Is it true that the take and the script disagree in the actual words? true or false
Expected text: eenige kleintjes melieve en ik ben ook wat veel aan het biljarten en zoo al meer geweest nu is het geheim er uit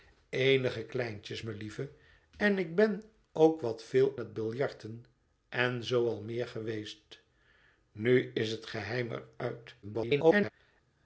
true